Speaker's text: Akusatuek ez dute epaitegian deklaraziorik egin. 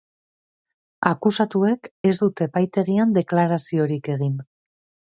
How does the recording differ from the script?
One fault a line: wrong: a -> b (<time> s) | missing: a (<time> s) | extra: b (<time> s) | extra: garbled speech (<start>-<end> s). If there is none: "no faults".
no faults